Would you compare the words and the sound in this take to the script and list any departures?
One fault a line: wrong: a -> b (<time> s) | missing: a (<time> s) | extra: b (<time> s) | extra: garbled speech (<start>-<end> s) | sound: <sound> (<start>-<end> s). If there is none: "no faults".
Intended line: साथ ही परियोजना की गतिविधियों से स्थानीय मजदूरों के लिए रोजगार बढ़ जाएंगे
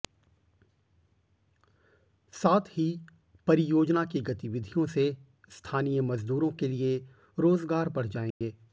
sound: dropout (8.3-8.4 s)